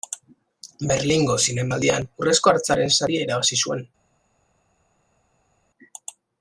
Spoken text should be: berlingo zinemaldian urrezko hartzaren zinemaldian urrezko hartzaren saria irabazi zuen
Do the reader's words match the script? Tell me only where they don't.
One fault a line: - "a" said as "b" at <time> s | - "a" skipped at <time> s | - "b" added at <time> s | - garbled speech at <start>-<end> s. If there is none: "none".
- "zinemaldian urrezko hartzaren" skipped at 3.0 s